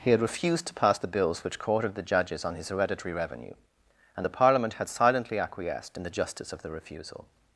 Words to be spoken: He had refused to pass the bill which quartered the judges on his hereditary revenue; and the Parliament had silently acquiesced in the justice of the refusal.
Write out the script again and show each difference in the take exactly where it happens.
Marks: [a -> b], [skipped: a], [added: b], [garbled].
He had refused to pass the [bill -> bills] which quartered the judges on his hereditary revenue; and the Parliament had silently acquiesced in the justice of the refusal.